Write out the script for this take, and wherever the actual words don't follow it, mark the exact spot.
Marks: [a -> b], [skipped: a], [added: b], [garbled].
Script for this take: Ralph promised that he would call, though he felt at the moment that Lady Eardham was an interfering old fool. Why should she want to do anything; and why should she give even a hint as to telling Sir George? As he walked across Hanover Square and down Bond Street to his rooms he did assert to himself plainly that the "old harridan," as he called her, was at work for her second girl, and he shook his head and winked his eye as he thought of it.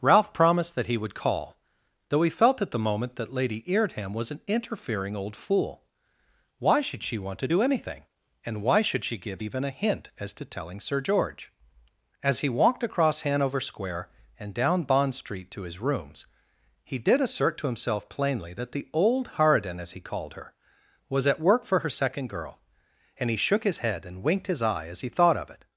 Ralph promised that he would call, though he felt at the moment that Lady Eardham was an interfering old fool. Why should she want to do anything; and why should she give even a hint as to telling Sir George? As he walked across Hanover Square and down Bond Street to his rooms he did assert to himself plainly that the "old harridan," as he called her, was at work for her second girl, and he shook his head and winked his eye as he thought of it.